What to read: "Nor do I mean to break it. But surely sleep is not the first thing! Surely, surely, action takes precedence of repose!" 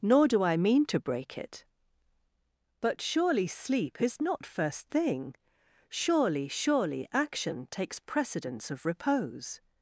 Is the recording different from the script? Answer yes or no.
yes